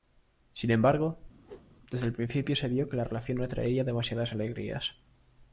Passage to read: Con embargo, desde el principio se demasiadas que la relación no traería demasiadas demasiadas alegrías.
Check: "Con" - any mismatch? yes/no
yes